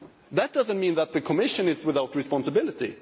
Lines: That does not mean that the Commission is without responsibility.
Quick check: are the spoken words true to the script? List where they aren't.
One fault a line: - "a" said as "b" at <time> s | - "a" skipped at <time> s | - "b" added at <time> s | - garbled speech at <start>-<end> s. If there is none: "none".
none